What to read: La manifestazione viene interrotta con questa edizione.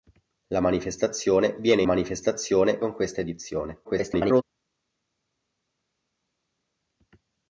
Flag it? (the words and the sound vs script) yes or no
yes